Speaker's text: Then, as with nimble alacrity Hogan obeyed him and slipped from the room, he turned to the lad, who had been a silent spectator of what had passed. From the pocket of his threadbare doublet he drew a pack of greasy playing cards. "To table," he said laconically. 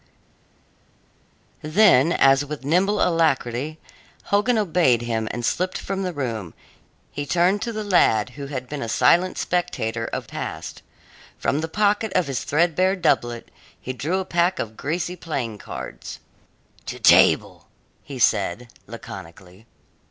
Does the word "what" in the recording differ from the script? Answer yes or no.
yes